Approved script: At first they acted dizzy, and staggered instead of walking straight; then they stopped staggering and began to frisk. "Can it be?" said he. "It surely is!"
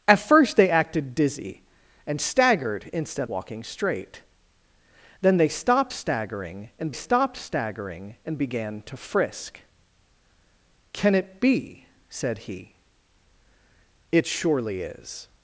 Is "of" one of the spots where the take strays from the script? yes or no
yes